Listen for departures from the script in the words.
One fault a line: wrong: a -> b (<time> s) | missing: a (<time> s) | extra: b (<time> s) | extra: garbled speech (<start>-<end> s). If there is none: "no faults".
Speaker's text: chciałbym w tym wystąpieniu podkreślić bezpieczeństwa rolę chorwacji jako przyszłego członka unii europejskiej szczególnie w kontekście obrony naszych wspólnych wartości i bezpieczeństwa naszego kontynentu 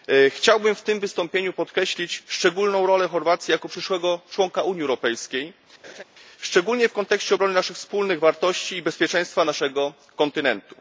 wrong: bezpieczeństwa -> szczególną (2.3 s)